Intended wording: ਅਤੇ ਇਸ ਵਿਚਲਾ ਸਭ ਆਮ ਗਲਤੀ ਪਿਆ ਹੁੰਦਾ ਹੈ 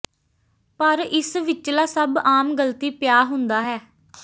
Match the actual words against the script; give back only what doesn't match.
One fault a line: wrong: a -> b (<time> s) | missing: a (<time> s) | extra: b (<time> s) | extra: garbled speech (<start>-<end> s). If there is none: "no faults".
wrong: ਅਤੇ -> ਪਰ (0.8 s)